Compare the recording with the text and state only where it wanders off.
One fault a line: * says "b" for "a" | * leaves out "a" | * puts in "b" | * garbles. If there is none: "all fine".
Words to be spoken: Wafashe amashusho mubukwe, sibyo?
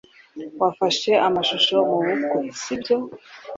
all fine